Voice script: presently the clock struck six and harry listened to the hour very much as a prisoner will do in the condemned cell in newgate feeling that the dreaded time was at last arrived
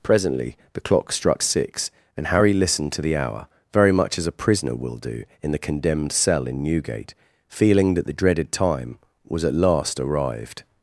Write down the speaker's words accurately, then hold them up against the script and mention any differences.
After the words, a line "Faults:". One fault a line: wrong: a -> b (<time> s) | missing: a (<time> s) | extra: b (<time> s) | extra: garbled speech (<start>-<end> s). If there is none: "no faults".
presently the clock struck six and harry listened to the hour very much as a prisoner will do in the condemned cell in newgate feeling that the dreaded time was at last arrived
Faults:
no faults